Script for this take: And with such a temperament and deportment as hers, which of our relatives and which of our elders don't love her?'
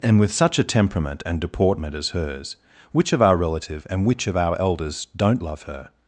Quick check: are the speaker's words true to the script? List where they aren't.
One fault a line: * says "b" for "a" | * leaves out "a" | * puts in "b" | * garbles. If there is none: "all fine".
* says "relative" for "relatives"